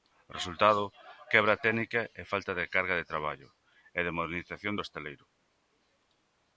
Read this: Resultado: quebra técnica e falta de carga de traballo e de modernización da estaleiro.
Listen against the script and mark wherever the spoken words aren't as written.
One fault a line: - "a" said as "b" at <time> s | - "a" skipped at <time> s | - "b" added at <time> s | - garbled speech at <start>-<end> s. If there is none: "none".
- "da" said as "do" at 4.7 s